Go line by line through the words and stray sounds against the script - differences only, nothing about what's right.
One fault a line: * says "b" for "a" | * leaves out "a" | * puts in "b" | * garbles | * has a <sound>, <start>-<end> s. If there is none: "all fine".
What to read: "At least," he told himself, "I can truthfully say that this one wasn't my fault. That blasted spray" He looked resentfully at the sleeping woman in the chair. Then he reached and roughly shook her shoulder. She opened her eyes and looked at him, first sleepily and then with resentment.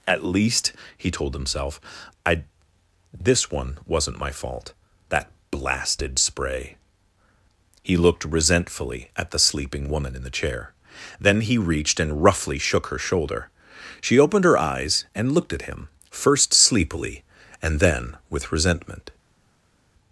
* leaves out "can truthfully say that"